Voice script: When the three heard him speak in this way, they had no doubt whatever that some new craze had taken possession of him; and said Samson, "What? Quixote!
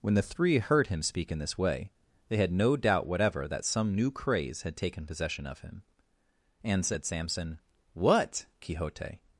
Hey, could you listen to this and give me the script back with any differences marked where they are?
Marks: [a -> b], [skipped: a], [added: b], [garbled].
When the three heard him speak in this way, they had no doubt whatever that some new craze had taken possession of him; and said Samson, "What? Quixote!